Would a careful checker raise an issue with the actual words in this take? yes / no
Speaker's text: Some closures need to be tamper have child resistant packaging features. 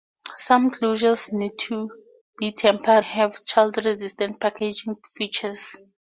no